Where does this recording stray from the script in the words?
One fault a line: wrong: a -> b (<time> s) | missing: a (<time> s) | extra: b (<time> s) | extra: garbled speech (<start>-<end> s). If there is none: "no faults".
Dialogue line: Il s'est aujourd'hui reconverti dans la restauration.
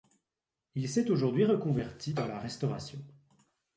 no faults